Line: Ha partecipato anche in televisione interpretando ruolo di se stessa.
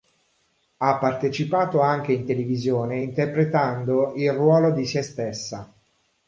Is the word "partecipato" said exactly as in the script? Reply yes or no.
yes